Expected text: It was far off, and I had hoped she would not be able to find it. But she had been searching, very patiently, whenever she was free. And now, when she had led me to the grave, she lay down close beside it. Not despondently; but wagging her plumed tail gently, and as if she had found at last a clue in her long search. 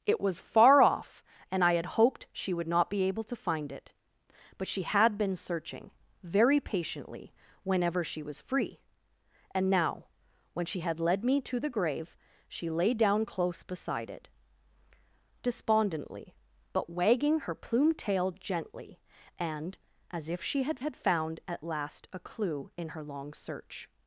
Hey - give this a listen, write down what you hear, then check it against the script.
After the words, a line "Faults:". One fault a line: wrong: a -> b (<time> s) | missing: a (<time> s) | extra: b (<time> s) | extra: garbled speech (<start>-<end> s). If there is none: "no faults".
It was far off, and I had hoped she would not be able to find it. But she had been searching, very patiently, whenever she was free. And now, when she had led me to the grave, she lay down close beside it. Despondently; but wagging her plumed tail gently, and as if she had had found at last a clue in her long search.
Faults:
missing: Not (14.3 s)
extra: had (20.8 s)